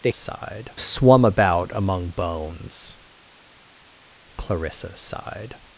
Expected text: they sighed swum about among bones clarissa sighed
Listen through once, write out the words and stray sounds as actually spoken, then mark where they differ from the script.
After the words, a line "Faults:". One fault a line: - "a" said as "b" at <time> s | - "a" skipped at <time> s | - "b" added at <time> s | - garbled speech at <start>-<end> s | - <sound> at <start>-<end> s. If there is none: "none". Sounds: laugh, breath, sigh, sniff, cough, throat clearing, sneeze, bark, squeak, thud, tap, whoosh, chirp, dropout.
they sighed swum about among bones clarissa sighed
Faults:
none